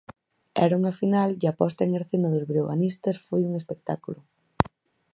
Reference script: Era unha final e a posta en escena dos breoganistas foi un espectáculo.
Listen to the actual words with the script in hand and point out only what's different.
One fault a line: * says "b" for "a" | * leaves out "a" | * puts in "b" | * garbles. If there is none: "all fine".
all fine